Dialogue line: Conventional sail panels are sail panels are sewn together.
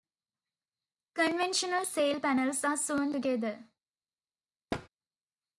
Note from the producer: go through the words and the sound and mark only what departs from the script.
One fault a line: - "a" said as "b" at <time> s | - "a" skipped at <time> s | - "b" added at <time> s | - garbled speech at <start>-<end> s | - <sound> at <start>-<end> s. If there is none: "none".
- "sail panels are" skipped at 2.8 s
- thud at 4.7-4.9 s